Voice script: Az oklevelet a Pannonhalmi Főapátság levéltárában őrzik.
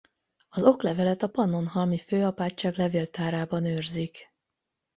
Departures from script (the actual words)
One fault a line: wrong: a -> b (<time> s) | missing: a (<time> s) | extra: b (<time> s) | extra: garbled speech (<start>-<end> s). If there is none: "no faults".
no faults